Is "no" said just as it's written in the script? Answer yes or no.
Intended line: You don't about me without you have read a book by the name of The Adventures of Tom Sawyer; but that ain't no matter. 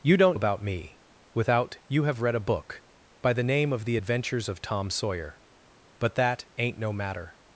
yes